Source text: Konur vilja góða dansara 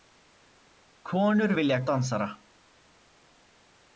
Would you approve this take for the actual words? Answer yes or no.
no